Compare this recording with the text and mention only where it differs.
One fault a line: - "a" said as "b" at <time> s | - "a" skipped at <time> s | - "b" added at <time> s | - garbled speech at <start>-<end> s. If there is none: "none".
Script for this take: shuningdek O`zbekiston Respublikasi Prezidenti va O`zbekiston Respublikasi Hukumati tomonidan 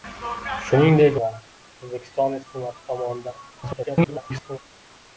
- "O`zbekiston Respublikasi Prezidenti" skipped at 1.2 s
- "Respublikasi" skipped at 2.4 s
- garbled speech at 3.5-4.6 s